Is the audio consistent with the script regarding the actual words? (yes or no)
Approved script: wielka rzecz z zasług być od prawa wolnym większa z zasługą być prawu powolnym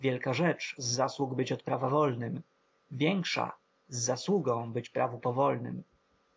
yes